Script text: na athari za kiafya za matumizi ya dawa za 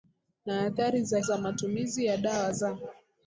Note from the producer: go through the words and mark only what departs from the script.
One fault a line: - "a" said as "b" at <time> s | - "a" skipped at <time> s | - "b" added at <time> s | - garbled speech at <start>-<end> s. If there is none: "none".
- "kiafya" skipped at 1.2 s